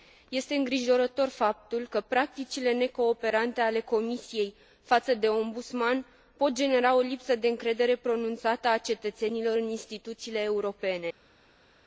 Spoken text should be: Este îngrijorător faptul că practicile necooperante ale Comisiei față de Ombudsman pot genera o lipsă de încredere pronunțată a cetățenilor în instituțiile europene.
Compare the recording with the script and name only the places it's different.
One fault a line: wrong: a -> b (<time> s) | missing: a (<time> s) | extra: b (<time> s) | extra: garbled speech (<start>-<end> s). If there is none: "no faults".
no faults